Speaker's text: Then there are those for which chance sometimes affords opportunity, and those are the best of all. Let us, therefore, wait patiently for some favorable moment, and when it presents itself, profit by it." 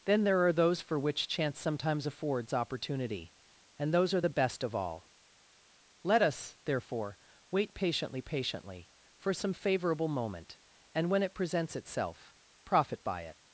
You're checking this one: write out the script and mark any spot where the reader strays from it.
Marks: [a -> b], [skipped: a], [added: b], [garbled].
Then there are those for which chance sometimes affords opportunity, and those are the best of all. Let us, therefore, wait patiently [added: patiently] for some favorable moment, and when it presents itself, profit by it."